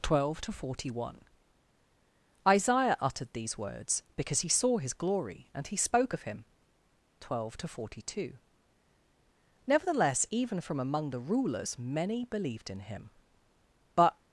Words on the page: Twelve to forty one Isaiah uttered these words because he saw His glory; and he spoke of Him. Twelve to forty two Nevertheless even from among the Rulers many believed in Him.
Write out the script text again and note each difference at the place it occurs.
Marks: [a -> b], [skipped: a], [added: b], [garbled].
Twelve to forty one Isaiah uttered these words because he saw His glory; and he spoke of Him. Twelve to forty two Nevertheless even from among the Rulers many believed in Him. [added: But]